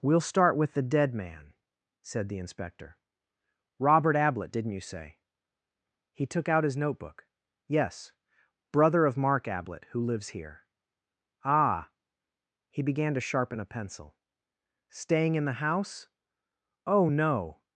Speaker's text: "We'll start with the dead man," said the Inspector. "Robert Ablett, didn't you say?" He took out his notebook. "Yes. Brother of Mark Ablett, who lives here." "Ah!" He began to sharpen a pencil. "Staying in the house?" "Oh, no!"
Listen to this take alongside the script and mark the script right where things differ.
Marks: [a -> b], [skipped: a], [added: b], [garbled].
"We'll start with the dead man," said the Inspector. "Robert Ablett, didn't you say?" He took out his notebook. "Yes. Brother of Mark Ablett, who lives here." "Ah!" He began to sharpen a pencil. "Staying in the house?" "Oh, no!"